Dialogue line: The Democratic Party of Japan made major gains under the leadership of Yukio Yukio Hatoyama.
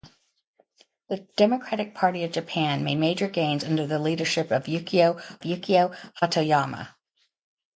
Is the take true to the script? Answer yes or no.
yes